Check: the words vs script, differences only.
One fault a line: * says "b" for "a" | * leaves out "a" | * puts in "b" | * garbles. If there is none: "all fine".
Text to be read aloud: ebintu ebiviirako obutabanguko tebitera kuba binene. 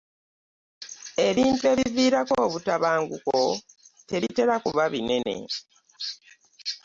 all fine